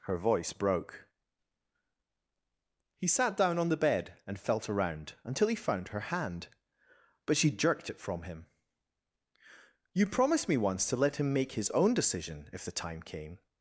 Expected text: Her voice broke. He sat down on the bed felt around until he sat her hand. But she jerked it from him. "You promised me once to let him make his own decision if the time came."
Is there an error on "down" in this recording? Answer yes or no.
no